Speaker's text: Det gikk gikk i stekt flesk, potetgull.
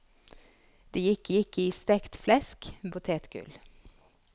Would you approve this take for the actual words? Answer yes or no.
yes